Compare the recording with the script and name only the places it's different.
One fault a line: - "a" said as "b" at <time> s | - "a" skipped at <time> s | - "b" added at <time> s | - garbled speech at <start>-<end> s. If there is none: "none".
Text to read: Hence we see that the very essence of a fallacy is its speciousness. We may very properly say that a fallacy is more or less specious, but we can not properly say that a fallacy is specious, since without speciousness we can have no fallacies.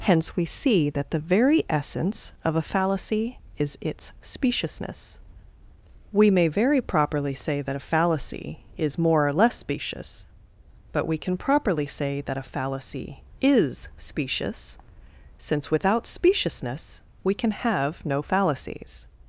- "not" skipped at 11.4 s